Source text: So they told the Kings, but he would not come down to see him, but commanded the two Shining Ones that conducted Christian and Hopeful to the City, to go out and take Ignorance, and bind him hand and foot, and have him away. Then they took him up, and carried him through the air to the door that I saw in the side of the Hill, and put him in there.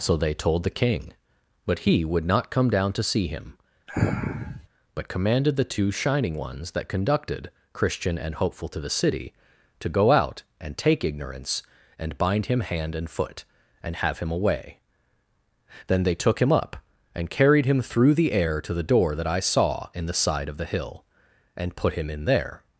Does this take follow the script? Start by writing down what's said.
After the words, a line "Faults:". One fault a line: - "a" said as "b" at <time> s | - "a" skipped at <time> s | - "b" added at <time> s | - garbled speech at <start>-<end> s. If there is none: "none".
So they told the King, but he would not come down to see him, but commanded the two Shining Ones that conducted Christian and Hopeful to the City, to go out and take Ignorance, and bind him hand and foot, and have him away. Then they took him up, and carried him through the air to the door that I saw in the side of the Hill, and put him in there.
Faults:
- "Kings" said as "King" at 0.8 s